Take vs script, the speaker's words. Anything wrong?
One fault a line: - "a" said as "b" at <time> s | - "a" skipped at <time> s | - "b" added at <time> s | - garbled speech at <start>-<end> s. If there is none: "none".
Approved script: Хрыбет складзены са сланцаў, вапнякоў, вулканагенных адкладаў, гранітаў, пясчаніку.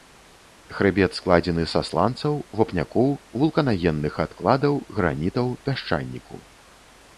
none